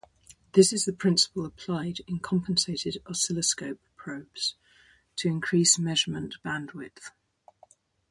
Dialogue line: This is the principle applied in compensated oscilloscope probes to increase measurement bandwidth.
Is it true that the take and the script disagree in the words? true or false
false